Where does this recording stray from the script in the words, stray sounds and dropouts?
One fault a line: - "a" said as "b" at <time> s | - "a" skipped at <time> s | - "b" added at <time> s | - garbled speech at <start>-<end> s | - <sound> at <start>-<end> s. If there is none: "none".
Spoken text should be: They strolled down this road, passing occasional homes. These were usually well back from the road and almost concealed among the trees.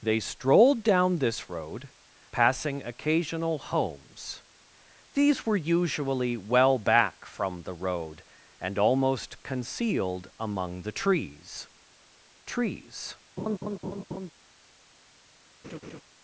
- "trees" added at 12.5 s
- laugh at 13.4-14.3 s
- laugh at 15.6-16.0 s